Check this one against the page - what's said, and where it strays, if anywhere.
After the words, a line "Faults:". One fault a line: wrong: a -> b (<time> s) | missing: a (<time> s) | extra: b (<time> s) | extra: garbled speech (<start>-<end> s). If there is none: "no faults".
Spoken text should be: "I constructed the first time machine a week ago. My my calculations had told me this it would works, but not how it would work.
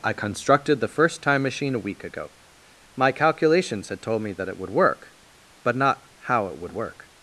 "I constructed the first time machine a week ago. My calculations had told me that it would work, but not how it would work.
Faults:
missing: my (3.1 s)
wrong: this -> that (4.3 s)
wrong: works -> work (4.7 s)